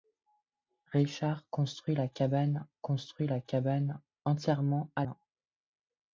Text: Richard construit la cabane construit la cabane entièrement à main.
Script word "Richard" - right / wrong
right